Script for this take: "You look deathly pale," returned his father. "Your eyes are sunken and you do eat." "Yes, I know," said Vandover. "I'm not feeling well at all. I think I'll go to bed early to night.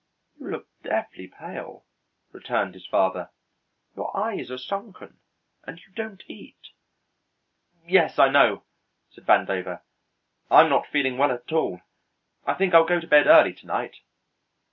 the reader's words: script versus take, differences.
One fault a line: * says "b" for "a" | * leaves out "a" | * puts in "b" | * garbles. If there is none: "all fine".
* says "don't" for "do"